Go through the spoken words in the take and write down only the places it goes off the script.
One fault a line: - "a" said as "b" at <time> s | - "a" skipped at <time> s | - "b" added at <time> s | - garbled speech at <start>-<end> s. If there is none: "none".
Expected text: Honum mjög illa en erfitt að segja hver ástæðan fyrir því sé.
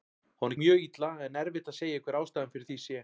none